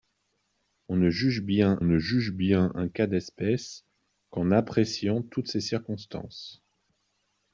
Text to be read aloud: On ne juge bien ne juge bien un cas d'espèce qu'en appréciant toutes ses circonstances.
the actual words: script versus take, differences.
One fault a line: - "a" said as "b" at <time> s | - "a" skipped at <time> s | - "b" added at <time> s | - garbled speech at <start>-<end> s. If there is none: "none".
none